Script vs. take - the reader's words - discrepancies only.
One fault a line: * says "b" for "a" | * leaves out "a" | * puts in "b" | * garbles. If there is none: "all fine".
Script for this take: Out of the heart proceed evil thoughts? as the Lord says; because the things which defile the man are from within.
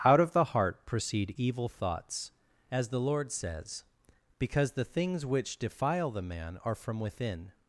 all fine